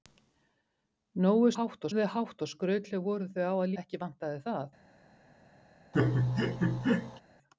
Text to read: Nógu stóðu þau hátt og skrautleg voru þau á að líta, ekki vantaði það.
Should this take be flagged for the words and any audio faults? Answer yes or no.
yes